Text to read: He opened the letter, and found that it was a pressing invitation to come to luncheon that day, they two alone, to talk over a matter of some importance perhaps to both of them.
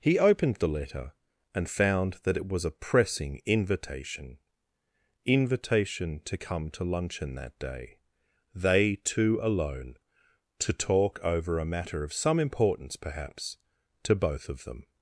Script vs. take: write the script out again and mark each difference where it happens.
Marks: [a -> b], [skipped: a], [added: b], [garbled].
He opened the letter, and found that it was a pressing invitation [added: invitation] to come to luncheon that day, they two alone, to talk over a matter of some importance perhaps to both of them.